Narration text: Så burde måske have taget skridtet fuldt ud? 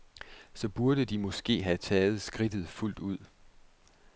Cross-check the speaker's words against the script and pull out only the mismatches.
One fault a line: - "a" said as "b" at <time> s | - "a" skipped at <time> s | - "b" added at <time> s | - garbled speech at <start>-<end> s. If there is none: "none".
- "de" added at 1.1 s